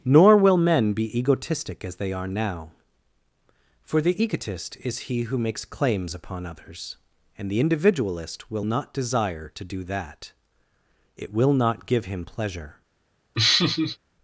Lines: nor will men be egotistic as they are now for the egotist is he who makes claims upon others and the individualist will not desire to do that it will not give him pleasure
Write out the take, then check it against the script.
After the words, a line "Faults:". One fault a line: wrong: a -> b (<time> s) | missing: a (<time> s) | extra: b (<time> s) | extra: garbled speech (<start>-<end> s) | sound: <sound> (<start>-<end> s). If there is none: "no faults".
nor will men be egotistic as they are now for the egotist is he who makes claims upon others and the individualist will not desire to do that it will not give him pleasure
Faults:
sound: laugh (13.3-14.0 s)